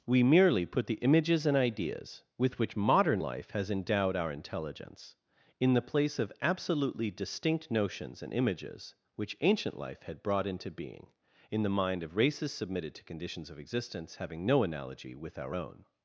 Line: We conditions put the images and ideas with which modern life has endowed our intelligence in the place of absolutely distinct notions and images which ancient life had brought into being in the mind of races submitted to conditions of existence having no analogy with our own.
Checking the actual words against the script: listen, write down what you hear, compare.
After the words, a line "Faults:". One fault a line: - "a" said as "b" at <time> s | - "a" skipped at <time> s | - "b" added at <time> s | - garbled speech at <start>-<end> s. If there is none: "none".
We merely put the images and ideas with which modern life has endowed our intelligence in the place of absolutely distinct notions and images which ancient life had brought into being in the mind of races submitted to conditions of existence having no analogy with our own.
Faults:
- "conditions" said as "merely" at 0.2 s